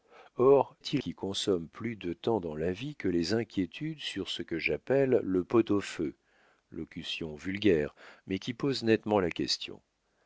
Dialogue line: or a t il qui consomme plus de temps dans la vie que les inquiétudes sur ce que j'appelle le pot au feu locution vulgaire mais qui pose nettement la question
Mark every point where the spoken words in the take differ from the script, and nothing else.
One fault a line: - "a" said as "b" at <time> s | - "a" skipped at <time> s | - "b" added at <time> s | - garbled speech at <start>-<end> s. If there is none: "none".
none